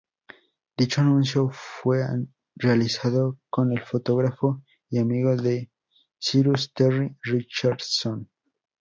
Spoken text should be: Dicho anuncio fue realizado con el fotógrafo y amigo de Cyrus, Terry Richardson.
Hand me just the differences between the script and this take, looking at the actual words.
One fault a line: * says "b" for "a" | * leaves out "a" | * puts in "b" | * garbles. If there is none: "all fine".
all fine